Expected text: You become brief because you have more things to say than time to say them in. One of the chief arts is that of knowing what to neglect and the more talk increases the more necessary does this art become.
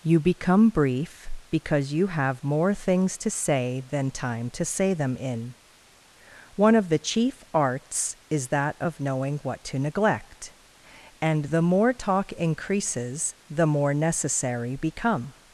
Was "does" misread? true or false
true